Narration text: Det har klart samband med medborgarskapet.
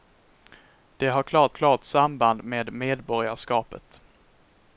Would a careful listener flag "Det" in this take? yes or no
no